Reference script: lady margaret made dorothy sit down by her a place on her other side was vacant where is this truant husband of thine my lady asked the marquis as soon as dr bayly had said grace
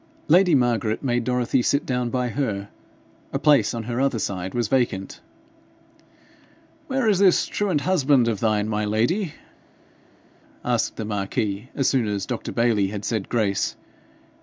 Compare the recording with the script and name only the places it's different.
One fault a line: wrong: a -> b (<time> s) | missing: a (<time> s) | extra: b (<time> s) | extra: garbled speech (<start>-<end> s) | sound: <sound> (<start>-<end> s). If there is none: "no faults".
no faults